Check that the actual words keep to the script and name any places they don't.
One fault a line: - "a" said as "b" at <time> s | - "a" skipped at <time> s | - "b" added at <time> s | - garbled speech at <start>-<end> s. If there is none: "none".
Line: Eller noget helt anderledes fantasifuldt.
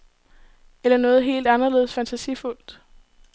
none